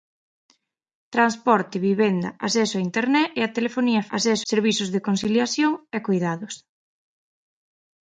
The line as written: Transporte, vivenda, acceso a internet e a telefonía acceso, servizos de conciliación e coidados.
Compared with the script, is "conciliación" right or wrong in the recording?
right